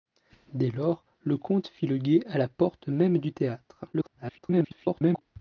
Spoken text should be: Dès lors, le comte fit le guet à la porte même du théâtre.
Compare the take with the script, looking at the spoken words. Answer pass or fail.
fail